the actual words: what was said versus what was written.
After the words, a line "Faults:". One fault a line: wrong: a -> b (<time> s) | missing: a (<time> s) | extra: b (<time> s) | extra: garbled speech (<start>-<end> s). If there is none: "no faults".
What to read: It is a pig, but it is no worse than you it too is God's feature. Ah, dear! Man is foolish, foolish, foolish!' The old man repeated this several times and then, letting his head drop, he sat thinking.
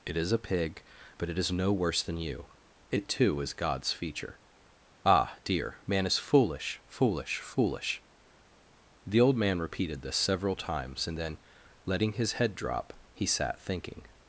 It is a pig, but it is no worse than you it too is God's feature. Ah, dear! Man is foolish, foolish, foolish!' The old man repeated this several times and then, letting his head drop, he sat thinking.
Faults:
no faults